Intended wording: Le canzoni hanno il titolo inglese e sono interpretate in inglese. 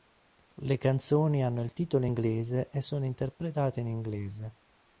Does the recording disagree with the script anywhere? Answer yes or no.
no